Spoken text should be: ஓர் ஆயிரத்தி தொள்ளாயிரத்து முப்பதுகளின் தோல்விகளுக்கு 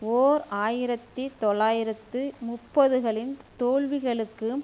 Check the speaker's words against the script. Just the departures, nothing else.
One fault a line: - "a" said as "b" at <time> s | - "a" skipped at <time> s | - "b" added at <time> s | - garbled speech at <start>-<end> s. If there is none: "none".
none